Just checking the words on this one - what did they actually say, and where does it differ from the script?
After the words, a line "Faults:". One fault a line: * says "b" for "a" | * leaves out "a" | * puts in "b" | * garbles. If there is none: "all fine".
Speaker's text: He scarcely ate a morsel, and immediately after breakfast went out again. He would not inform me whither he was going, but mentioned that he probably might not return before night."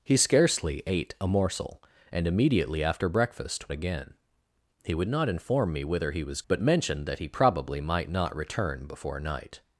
He scarcely ate a morsel, and immediately after breakfast again. He would not inform me whither he was but mentioned that he probably might not return before night."
Faults:
* leaves out "went out"
* leaves out "going"